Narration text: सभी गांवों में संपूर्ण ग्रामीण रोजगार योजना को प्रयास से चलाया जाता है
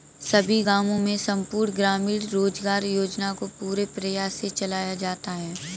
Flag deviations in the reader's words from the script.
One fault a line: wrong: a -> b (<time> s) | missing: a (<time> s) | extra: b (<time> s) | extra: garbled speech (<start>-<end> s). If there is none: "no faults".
extra: पूरे (3.6 s)